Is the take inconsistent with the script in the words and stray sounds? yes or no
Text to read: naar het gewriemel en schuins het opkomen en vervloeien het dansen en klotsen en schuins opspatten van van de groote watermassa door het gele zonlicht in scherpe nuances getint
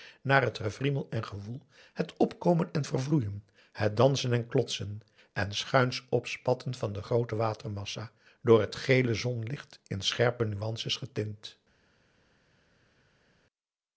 yes